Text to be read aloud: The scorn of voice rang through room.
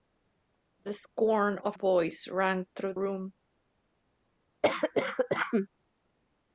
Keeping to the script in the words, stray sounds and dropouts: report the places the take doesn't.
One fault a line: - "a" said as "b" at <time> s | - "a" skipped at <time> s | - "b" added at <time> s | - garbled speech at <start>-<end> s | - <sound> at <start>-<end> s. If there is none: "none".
- cough at 4.6-5.7 s